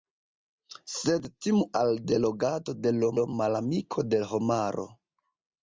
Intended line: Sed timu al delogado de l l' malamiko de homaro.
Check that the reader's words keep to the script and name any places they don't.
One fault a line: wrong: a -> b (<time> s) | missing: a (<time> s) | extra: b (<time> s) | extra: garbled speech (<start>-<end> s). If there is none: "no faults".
no faults